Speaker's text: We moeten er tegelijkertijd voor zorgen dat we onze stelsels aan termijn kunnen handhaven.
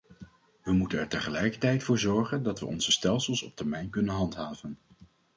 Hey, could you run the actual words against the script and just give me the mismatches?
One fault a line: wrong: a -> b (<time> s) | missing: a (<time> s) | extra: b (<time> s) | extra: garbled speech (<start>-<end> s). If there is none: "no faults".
wrong: aan -> op (3.4 s)